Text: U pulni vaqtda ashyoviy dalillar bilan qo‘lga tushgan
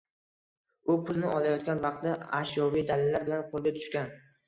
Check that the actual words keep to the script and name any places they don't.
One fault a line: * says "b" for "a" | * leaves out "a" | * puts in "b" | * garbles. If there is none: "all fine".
* puts in "olayotgan"